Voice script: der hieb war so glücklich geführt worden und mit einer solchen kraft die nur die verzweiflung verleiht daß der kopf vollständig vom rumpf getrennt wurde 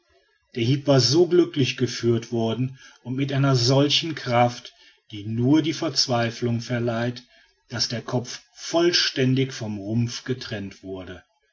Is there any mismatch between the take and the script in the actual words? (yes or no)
no